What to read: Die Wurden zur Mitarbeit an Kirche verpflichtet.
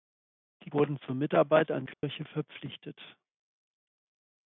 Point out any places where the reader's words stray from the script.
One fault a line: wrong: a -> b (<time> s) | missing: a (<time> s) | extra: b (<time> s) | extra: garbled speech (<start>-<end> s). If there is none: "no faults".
no faults